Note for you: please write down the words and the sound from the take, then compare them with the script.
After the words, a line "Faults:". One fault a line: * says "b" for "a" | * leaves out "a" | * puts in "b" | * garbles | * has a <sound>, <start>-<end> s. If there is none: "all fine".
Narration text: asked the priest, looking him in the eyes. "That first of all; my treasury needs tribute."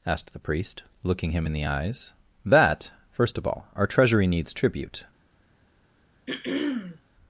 asked the priest, looking him in the eyes. "That first of all; our treasury needs tribute."
Faults:
* says "our" for "my"
* has a throat clearing, 6.3-7.0 s